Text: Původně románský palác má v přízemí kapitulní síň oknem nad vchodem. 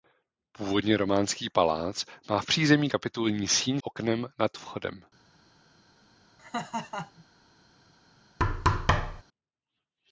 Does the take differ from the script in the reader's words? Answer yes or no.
no